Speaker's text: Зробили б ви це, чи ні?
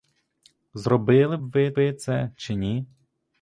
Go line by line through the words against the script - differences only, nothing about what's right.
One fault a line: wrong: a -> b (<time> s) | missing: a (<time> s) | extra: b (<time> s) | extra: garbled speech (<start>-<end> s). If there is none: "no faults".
extra: ви (1.7 s)